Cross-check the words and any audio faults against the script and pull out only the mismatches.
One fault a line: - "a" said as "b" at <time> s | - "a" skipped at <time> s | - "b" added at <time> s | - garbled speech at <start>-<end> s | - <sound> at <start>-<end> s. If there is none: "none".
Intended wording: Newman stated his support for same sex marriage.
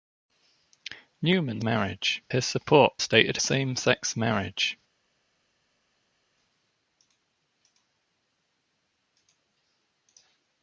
- "stated" said as "marriage" at 1.6 s
- "for" said as "stated" at 3.0 s